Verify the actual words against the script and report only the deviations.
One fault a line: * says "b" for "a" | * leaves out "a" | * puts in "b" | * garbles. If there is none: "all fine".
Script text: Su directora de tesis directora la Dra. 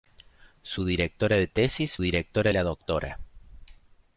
all fine